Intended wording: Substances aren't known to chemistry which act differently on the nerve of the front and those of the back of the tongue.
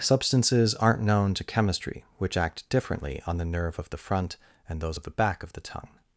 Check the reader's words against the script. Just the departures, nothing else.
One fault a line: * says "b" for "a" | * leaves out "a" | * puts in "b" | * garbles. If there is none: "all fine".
all fine